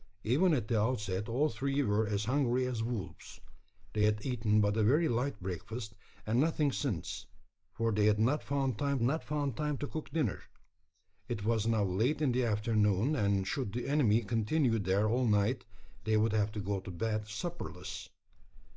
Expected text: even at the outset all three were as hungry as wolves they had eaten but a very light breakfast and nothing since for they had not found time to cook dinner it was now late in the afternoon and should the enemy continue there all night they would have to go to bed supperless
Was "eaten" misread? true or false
false